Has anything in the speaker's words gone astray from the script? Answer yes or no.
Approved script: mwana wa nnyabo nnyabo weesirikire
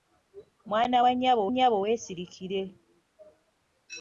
no